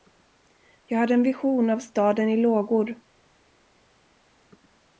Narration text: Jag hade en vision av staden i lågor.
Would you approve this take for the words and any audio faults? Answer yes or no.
yes